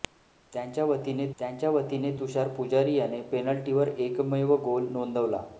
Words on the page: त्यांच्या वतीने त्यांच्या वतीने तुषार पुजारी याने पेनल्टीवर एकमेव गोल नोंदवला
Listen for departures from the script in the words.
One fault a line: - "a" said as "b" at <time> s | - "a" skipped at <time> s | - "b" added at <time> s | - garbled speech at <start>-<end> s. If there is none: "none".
none